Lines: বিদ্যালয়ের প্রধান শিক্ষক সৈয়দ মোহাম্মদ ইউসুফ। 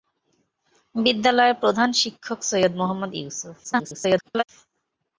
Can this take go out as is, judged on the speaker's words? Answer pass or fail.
fail